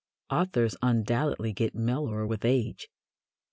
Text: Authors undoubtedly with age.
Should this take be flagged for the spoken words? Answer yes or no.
yes